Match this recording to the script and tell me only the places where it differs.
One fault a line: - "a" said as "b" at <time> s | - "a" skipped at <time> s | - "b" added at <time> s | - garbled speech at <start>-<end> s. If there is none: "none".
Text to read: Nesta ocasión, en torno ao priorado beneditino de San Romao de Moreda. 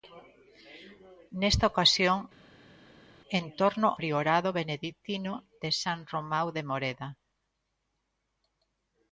- "ao" skipped at 3.9 s